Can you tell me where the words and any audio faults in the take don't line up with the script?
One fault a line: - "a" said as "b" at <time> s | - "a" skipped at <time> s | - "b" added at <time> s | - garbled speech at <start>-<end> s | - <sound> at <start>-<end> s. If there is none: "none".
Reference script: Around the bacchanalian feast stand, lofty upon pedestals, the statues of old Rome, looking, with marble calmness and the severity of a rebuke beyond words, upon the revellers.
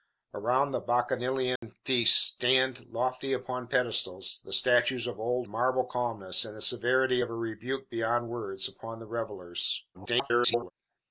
- dropout at 1.6-1.6 s
- "Rome looking with" skipped at 5.5 s
- garbled speech at 9.9-10.7 s